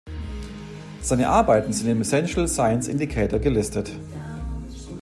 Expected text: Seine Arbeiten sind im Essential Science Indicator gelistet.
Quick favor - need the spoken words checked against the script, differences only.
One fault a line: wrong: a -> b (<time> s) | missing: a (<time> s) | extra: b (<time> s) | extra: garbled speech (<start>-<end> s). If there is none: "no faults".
no faults